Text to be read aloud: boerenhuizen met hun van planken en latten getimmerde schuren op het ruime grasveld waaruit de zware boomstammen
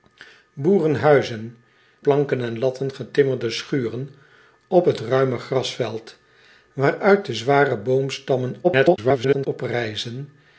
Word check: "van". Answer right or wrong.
wrong